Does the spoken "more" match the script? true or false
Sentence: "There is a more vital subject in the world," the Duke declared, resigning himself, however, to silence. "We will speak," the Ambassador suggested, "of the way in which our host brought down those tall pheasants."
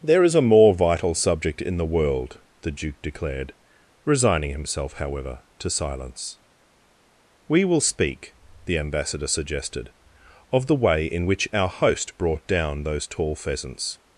true